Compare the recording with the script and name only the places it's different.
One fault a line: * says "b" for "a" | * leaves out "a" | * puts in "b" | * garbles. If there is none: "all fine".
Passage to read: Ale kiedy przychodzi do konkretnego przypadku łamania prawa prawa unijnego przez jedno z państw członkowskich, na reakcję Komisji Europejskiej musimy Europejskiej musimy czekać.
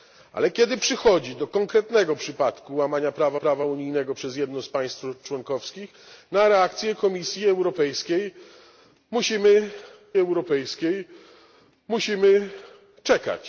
all fine